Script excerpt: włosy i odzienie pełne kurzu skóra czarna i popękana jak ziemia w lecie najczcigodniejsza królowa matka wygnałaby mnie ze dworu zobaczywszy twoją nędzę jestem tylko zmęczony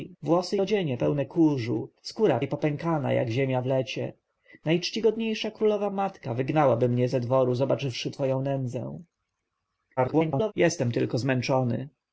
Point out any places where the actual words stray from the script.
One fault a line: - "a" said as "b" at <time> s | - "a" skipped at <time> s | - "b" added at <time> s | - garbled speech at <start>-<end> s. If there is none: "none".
- "i" skipped at 0.6 s
- "czarna" skipped at 2.4 s
- garbled speech at 10.0-10.5 s